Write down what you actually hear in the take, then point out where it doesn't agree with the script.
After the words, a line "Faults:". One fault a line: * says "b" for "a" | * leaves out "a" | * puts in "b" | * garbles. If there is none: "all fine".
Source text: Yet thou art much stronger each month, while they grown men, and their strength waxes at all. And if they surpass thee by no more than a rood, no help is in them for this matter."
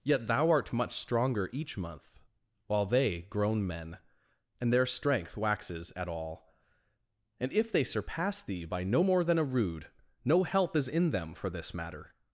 Yet thou art much stronger each month, while they grown men, and their strength waxes at all. And if they surpass thee by no more than a rood, no help is in them for this matter."
Faults:
all fine